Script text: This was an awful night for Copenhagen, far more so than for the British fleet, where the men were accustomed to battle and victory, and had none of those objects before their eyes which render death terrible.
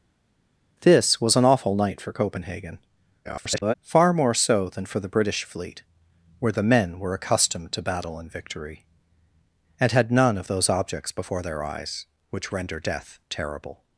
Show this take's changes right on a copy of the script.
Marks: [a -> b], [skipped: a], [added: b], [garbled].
This was an awful night for Copenhagen, [garbled] far more so than for the British fleet, where the men were accustomed to battle and victory, and had none of those objects before their eyes which render death terrible.